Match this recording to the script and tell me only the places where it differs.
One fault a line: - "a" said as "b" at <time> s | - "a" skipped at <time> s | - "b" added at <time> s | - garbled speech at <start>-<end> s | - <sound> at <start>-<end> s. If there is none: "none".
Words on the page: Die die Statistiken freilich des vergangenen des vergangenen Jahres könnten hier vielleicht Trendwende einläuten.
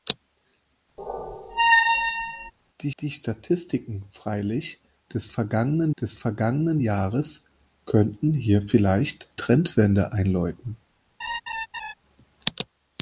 - squeak at 1.0-2.5 s
- laugh at 11.2-11.9 s